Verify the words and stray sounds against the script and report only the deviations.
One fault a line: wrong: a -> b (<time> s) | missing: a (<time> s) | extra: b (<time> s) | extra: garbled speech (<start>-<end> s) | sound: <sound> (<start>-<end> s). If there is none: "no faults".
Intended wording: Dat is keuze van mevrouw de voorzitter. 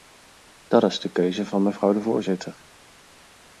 extra: de (1.0 s)